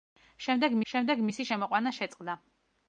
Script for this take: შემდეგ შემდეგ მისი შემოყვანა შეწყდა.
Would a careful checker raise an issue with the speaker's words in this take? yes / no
no